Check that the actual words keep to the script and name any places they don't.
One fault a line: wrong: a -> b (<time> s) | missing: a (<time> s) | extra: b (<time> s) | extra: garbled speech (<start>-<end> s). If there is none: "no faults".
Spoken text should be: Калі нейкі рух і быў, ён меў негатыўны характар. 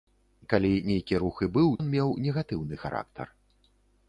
no faults